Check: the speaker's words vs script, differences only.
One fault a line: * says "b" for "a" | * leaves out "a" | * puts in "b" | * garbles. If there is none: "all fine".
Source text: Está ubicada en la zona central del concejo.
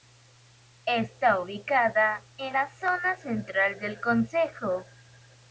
all fine